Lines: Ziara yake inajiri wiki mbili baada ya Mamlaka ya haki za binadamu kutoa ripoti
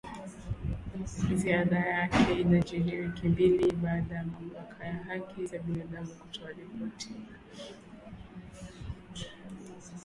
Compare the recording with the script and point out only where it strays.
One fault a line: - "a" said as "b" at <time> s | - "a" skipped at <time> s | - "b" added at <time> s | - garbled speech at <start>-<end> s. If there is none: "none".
none